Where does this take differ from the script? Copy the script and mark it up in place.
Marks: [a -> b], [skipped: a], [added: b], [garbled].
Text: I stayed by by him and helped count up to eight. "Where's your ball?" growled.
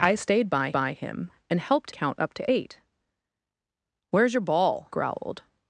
I stayed by by him and helped count up to eight. "Where's your ball?" growled.